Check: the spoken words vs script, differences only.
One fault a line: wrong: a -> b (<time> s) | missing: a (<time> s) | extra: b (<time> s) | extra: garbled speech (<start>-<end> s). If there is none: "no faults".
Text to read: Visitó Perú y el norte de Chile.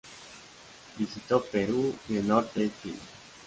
no faults